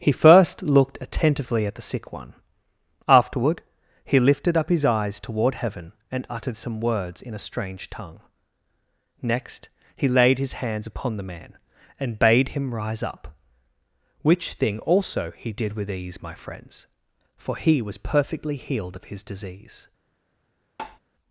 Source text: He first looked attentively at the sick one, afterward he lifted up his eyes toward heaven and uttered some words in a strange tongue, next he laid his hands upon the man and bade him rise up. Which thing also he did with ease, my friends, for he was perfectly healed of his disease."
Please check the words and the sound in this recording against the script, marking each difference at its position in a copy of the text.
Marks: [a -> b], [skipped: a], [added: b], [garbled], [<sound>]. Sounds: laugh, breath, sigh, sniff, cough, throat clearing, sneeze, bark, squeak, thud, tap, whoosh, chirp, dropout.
He first looked attentively at the sick one, afterward he lifted up his eyes toward heaven and uttered some words in a strange tongue, next he laid his hands upon the man and bade him rise up. Which thing also he did with ease, my friends, for he was perfectly healed of his disease." [tap]